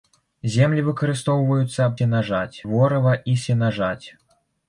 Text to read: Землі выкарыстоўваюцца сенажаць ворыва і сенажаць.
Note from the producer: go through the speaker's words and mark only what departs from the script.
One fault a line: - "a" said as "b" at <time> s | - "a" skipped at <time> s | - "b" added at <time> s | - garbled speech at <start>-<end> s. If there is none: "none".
none